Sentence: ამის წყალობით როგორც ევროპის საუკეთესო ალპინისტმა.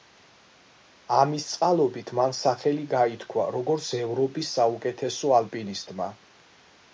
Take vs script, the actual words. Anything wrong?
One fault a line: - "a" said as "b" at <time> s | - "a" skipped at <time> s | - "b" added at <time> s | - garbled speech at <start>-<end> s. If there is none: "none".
- "მან სახელი გაითქვა" added at 2.2 s